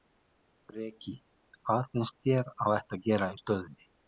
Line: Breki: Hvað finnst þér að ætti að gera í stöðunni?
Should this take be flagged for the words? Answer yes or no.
no